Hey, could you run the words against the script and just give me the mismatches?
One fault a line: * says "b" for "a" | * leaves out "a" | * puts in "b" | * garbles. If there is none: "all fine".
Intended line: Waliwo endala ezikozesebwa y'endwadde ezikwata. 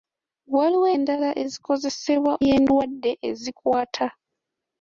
all fine